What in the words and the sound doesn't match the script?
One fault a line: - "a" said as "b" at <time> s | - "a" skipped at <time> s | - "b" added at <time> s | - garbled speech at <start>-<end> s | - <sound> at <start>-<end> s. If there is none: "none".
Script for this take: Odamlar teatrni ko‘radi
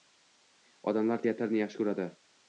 - "yaxshi" added at 1.6 s